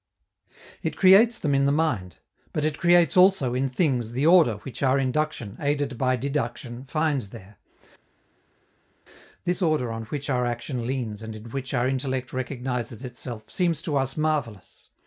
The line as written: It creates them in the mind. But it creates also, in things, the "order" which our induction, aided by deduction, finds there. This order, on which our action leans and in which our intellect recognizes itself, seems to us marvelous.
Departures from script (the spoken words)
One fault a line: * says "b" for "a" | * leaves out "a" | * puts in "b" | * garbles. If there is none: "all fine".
all fine